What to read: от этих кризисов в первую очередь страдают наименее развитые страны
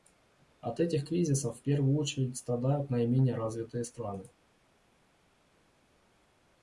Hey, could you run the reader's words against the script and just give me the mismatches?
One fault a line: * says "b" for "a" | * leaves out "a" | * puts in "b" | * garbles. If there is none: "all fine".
all fine